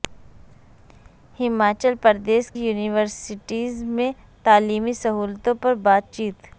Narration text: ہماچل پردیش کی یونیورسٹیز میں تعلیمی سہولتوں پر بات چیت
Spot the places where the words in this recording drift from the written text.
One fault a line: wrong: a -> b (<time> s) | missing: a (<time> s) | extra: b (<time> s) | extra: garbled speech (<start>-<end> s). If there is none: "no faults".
missing: کی (2.5 s)